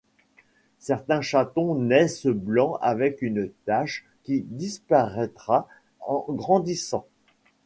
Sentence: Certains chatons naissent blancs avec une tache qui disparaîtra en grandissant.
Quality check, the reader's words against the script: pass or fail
pass